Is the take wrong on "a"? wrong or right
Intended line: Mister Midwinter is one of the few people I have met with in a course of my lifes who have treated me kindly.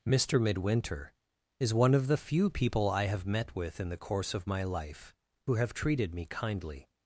wrong